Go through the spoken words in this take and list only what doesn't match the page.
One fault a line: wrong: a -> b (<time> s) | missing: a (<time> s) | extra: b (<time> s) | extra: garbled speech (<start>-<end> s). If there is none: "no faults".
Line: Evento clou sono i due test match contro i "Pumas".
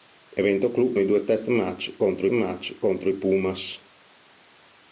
missing: sono (1.0 s)
extra: match contro (2.3 s)